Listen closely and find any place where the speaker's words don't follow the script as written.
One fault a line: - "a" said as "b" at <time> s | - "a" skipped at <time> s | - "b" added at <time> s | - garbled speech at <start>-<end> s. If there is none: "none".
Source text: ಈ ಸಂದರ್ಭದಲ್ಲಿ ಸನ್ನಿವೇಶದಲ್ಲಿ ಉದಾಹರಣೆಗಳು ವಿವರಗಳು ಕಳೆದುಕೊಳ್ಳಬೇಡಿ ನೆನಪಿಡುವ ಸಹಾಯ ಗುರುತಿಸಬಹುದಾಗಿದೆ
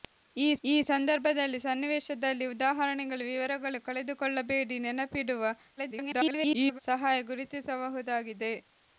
- "ಈ" added at 0.6 s
- garbled speech at 5.8-6.8 s